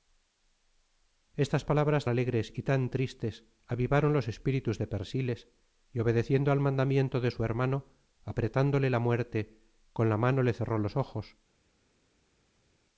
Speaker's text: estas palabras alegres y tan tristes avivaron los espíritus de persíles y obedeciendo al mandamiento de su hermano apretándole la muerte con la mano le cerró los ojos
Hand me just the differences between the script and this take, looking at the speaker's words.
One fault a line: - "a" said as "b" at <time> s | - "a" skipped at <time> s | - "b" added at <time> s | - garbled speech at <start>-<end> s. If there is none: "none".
none